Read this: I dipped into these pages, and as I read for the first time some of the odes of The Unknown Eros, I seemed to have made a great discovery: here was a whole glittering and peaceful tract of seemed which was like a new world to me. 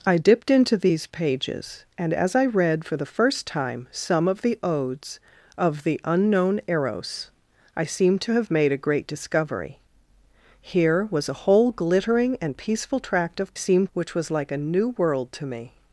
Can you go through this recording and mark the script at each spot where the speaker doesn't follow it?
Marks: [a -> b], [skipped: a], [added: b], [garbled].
I dipped into these pages, and as I read for the first time some of the odes of The Unknown Eros, I seemed to have made a great discovery: here was a whole glittering and peaceful tract of seemed which was like a new world to me.